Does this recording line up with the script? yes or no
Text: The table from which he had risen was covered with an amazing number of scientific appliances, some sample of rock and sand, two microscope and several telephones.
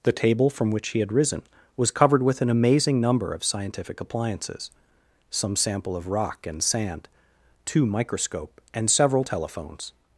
yes